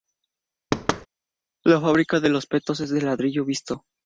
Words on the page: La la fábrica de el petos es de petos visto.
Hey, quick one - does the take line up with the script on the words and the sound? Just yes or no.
no